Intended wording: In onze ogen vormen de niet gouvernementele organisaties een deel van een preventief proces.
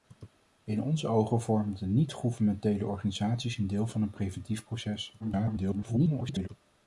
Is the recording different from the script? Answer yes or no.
yes